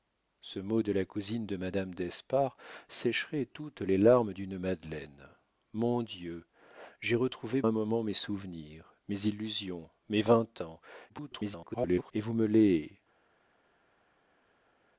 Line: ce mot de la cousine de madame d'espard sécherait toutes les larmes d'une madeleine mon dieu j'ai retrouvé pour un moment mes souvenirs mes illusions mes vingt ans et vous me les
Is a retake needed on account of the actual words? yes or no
yes